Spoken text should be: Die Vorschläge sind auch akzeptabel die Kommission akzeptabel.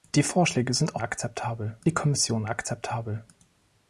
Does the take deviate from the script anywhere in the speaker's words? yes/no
no